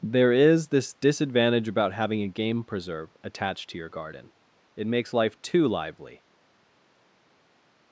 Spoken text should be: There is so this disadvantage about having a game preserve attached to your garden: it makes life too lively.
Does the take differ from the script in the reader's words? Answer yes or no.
yes